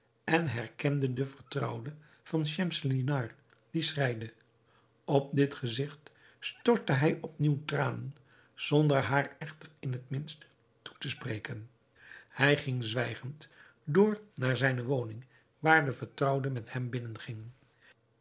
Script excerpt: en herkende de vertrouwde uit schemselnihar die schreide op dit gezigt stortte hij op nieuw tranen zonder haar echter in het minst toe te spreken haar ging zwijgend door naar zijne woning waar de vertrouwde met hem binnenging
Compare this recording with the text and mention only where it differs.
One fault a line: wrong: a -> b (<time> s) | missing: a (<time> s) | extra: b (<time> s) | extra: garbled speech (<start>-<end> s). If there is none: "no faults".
wrong: uit -> van (2.2 s)
wrong: haar -> hij (12.3 s)